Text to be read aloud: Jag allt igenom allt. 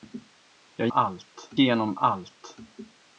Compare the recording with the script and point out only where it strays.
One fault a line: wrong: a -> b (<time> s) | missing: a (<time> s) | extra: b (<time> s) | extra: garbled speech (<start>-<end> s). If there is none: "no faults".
no faults